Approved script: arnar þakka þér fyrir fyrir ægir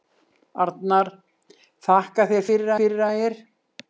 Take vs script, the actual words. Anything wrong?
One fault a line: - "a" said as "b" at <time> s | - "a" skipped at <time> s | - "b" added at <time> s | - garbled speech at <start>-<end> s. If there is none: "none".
none